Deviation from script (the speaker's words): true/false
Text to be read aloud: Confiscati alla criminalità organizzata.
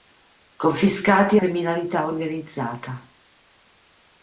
true